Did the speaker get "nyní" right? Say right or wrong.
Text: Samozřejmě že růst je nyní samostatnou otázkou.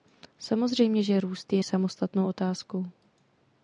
wrong